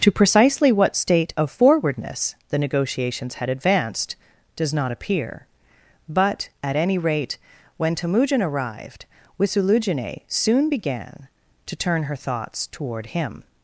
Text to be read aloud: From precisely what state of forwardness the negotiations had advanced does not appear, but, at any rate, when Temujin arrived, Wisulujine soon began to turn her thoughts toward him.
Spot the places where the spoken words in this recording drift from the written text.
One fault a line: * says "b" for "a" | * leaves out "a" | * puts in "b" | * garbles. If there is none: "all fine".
* says "To" for "From"